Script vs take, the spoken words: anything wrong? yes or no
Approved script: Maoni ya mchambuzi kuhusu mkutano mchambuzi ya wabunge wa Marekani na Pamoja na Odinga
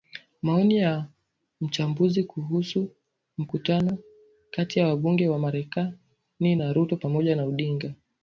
yes